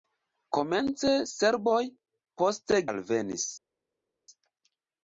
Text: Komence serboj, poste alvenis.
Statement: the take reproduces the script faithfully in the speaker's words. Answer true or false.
true